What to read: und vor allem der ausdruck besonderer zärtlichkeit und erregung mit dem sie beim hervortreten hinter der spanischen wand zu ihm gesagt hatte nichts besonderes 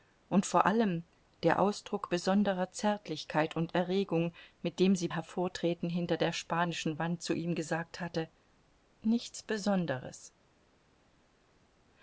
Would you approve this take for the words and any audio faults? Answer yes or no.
no